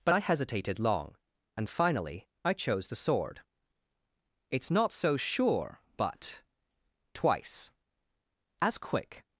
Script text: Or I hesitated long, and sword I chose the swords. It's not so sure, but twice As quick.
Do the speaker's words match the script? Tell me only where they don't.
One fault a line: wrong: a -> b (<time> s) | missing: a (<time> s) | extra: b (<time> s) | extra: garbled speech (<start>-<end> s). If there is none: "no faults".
wrong: Or -> But (0.0 s)
wrong: sword -> finally (1.7 s)
wrong: swords -> sword (3.0 s)